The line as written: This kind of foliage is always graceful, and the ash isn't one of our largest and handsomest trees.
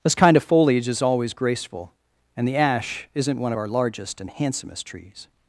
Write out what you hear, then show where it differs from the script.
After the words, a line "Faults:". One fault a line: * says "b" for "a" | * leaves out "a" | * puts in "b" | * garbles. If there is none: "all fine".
This kind of foliage is always graceful, and the ash isn't one of our largest and handsomest trees.
Faults:
all fine